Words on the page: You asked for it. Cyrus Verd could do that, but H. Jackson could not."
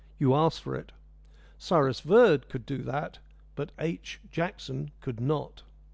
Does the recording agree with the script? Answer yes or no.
yes